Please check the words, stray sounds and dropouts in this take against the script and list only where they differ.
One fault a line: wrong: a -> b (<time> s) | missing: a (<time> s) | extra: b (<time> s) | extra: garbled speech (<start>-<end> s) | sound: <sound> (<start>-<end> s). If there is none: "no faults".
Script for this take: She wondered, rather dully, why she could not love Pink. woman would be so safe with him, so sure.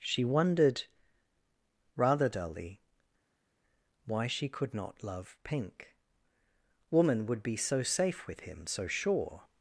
no faults